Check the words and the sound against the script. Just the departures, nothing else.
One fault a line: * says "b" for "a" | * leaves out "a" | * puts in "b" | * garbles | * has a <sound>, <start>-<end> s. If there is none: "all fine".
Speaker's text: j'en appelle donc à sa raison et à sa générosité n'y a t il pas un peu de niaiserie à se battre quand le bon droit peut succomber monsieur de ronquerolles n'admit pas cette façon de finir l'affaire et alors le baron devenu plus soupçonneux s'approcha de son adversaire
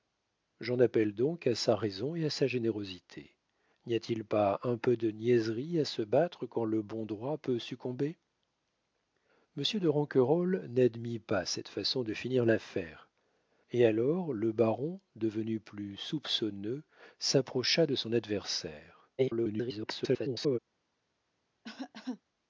* garbles
* has a cough, 21.6-22.2 s